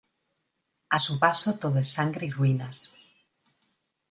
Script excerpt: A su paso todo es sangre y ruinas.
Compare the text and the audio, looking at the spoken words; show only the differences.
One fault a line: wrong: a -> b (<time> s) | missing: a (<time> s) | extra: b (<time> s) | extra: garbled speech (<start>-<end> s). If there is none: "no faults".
no faults